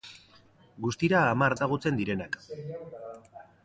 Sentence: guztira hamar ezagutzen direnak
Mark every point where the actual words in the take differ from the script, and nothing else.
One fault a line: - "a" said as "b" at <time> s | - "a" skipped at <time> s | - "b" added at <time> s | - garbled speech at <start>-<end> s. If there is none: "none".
none